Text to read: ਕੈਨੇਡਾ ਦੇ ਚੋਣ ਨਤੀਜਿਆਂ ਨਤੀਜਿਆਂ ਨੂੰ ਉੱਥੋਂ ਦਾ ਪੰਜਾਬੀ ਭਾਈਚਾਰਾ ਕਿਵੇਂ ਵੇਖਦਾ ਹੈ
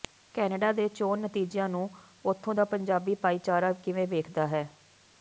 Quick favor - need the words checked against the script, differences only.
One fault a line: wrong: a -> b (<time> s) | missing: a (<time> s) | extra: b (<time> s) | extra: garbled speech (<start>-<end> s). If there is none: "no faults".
missing: ਨਤੀਜਿਆਂ (1.7 s)